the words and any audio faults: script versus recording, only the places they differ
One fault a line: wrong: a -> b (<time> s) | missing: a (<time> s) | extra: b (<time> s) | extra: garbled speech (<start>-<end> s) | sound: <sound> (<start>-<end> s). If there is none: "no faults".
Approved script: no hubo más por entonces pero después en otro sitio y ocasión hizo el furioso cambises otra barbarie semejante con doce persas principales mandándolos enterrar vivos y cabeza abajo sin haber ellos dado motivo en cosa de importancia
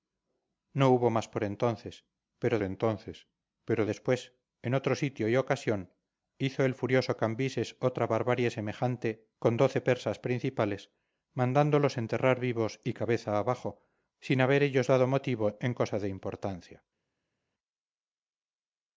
extra: entonces pero (2.6 s)